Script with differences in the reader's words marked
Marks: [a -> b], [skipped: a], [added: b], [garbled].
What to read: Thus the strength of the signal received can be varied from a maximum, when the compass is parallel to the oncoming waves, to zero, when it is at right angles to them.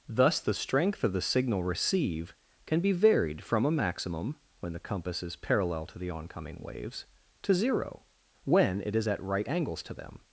Thus the strength of the signal [received -> receive] can be varied from a maximum, when the compass is parallel to the oncoming waves, to zero, when it is at right angles to them.